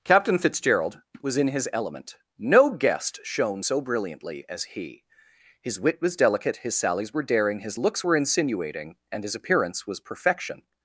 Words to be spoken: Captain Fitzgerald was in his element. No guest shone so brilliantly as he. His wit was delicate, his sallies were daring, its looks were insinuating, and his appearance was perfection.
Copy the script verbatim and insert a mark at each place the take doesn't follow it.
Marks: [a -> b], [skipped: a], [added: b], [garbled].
Captain Fitzgerald was in his element. No guest shone so brilliantly as he. His wit was delicate, his sallies were daring, [its -> his] looks were insinuating, and his appearance was perfection.